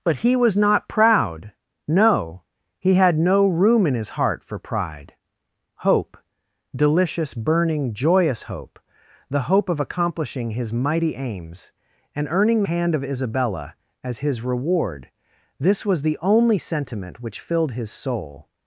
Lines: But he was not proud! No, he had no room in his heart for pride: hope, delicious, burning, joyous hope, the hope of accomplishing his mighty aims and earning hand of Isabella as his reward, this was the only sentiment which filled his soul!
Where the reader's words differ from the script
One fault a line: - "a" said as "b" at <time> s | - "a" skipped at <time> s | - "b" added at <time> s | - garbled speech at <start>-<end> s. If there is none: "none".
none